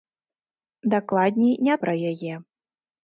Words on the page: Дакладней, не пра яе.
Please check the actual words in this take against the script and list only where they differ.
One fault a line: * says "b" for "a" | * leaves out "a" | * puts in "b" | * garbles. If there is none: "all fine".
all fine